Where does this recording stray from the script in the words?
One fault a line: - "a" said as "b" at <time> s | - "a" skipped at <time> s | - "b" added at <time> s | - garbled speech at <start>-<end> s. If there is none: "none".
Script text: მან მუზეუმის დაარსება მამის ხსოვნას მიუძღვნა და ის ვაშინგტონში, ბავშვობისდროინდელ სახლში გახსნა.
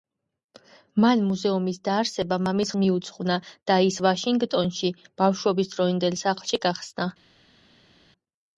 - "ხსოვნას" skipped at 2.7 s